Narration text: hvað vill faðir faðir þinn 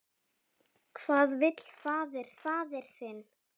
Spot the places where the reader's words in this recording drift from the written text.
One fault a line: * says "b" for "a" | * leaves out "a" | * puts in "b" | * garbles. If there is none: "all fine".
all fine